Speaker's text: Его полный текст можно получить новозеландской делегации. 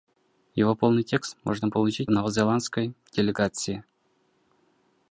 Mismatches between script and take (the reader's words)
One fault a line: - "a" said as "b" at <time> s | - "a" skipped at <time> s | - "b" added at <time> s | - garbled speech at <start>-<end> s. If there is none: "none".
none